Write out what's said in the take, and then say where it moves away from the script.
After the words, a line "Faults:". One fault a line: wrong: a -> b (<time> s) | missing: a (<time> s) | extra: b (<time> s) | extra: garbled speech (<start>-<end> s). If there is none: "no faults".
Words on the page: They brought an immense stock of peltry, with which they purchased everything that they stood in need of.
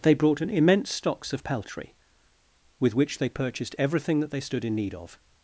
They brought an immense stocks of peltry, with which they purchased everything that they stood in need of.
Faults:
wrong: stock -> stocks (0.9 s)